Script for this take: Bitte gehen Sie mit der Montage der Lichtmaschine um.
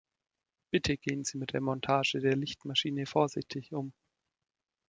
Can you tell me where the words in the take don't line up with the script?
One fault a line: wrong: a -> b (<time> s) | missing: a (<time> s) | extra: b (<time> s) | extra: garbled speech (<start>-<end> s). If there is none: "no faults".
extra: vorsichtig (3.0 s)